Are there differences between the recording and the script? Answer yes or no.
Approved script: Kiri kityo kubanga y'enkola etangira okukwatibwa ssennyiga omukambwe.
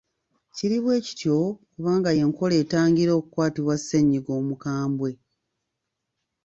yes